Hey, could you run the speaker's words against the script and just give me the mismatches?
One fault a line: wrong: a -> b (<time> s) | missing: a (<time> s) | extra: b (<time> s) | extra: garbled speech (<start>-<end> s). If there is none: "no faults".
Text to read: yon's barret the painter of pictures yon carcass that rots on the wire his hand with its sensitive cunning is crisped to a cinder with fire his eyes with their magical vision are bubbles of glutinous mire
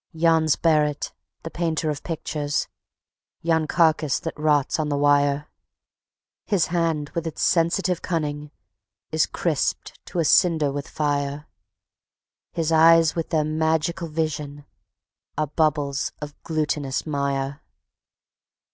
no faults